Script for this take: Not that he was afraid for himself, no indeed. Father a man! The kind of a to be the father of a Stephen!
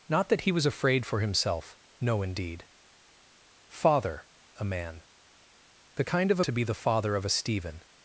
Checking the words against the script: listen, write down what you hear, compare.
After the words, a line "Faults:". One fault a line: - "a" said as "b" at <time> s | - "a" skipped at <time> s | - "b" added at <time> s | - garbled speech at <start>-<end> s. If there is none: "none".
Not that he was afraid for himself, no indeed. Father a man! The kind of a to be the father of a Stephen!
Faults:
none